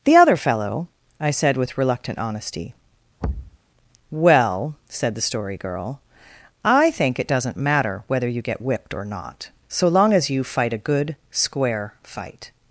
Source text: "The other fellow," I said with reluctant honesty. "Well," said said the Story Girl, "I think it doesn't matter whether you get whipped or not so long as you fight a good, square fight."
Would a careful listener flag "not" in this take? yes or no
no